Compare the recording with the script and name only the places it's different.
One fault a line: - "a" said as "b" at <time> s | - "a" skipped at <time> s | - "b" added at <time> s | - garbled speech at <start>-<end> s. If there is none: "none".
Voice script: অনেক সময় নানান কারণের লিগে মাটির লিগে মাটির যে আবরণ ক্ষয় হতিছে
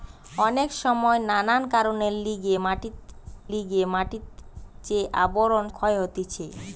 none